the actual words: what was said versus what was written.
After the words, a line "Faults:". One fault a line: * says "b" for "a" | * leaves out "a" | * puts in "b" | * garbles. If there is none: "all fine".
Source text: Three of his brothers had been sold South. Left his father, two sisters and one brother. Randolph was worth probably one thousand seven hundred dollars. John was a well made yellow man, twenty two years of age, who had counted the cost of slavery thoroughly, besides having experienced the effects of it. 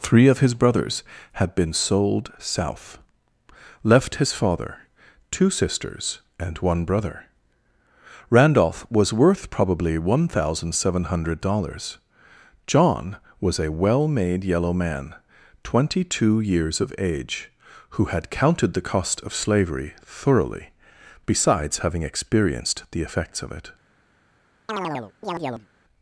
Three of his brothers had been sold South. Left his father, two sisters and one brother. Randolph was worth probably one thousand seven hundred dollars. John was a well made yellow man, twenty two years of age, who had counted the cost of slavery thoroughly, besides having experienced the effects of it.
Faults:
all fine